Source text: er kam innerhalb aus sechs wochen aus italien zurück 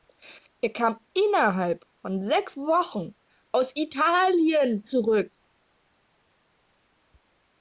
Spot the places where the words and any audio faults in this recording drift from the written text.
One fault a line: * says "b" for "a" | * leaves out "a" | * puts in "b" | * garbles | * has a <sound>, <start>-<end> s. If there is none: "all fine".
* says "von" for "aus"